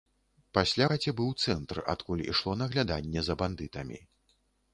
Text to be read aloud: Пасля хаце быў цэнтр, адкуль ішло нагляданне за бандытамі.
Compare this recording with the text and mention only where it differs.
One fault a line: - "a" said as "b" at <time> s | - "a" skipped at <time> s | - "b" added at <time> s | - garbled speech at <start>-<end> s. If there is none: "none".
none